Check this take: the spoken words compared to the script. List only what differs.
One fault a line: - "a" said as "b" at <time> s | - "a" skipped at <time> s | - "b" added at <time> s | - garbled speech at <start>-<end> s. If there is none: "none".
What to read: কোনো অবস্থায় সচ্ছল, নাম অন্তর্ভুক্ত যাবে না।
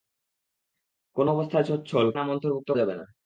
none